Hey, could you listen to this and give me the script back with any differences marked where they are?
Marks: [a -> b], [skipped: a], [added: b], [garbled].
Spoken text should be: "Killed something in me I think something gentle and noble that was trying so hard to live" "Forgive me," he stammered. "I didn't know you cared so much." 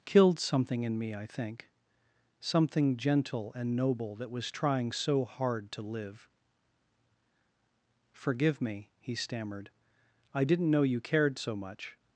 "Killed something in me I think something gentle and noble that was trying so hard to live" "Forgive me," he stammered. "I didn't know you cared so much."